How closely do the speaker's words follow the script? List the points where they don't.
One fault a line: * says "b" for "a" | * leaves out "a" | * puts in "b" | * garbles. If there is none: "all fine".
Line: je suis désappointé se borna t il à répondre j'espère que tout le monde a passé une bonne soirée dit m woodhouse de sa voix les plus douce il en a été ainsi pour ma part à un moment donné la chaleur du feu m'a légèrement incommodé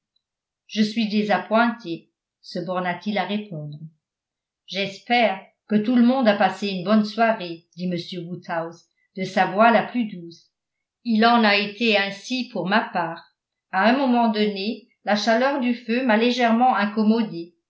* says "la" for "les"